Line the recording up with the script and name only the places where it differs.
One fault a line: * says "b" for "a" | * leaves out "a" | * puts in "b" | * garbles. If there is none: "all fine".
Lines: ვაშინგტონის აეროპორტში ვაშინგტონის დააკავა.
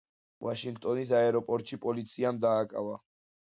* says "პოლიციამ" for "ვაშინგტონის"